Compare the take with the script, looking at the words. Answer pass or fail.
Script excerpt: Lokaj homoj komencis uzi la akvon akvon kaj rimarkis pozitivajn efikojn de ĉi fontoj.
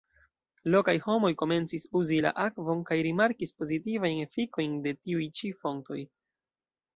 fail